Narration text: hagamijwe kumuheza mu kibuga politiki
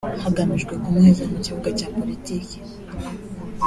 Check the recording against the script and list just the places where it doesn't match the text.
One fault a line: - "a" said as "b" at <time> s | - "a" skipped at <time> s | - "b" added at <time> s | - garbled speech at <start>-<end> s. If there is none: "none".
- "cya" added at 1.8 s